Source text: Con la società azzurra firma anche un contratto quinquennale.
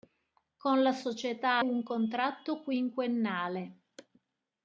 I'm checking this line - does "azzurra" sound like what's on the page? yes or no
no